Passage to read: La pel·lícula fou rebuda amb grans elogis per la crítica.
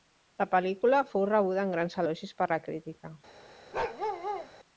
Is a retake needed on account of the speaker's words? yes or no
no